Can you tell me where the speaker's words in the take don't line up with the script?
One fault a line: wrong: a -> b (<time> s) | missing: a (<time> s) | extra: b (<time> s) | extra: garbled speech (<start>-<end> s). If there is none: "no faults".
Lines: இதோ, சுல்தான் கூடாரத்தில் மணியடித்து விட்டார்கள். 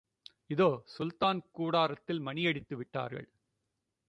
no faults